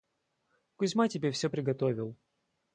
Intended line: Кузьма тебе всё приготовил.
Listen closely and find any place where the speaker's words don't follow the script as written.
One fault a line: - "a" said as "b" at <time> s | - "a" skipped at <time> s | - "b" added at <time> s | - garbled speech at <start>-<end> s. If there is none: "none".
none